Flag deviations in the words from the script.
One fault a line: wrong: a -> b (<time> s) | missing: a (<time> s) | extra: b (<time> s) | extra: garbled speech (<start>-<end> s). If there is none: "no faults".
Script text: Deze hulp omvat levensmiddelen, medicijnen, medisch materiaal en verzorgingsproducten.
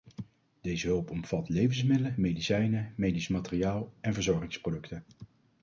no faults